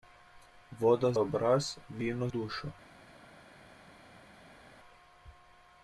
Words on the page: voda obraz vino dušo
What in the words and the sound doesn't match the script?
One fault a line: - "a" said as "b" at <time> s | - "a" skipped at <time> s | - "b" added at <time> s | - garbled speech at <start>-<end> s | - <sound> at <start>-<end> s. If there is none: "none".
none